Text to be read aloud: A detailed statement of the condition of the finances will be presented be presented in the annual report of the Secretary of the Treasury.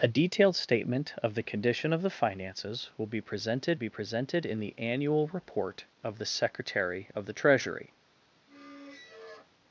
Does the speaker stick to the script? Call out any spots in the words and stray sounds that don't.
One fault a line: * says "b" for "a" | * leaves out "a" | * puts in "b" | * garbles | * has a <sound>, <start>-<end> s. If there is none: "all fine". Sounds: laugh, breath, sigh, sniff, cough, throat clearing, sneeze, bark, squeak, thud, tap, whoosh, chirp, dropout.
* has a squeak, 8.5-9.5 s